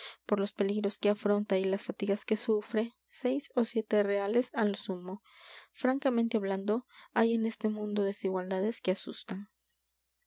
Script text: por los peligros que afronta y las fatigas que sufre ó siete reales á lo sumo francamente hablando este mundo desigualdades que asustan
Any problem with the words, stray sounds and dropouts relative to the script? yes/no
yes